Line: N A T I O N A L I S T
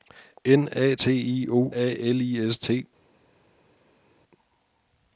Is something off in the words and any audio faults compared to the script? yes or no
yes